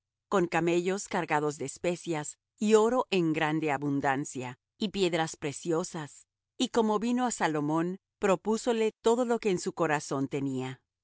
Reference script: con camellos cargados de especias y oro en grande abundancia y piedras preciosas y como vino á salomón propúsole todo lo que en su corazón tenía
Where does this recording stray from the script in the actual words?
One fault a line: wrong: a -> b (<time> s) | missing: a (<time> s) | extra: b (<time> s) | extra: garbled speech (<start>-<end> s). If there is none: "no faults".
no faults